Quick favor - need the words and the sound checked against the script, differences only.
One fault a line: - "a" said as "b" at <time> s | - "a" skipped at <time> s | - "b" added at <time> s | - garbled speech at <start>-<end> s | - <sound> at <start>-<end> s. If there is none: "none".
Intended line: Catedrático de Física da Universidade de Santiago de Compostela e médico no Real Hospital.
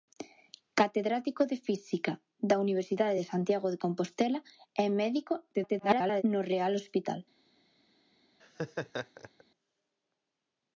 - garbled speech at 5.5-6.2 s
- laugh at 8.4-9.4 s